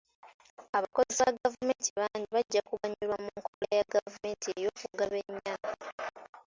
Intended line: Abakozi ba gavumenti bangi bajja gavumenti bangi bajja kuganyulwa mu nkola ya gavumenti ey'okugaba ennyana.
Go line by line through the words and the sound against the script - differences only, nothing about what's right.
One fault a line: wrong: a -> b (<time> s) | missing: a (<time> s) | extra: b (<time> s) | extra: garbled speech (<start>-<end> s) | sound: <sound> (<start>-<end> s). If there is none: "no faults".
missing: gavumenti bangi bajja (2.6 s)
sound: dropout (3.5-3.6 s)